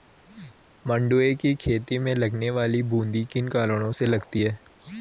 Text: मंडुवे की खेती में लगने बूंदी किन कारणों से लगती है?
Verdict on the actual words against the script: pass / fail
fail